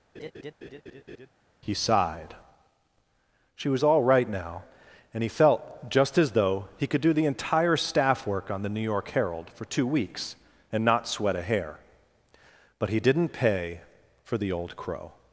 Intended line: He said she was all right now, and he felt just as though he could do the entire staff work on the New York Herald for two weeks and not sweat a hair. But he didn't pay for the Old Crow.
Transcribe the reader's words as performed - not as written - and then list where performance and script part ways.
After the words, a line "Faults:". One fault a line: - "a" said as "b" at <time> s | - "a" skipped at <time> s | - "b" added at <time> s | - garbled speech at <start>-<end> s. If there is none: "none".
He sighed she was all right now, and he felt just as though he could do the entire staff work on the New York Herald for two weeks and not sweat a hair. But he didn't pay for the Old Crow.
Faults:
- "said" said as "sighed" at 1.7 s